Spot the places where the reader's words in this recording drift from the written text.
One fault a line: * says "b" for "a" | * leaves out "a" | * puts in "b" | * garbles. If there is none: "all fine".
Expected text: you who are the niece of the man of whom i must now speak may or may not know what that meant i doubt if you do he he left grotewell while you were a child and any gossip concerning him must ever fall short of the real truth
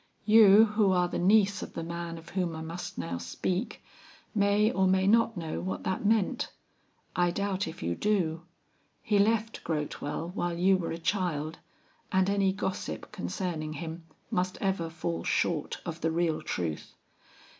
* leaves out "he"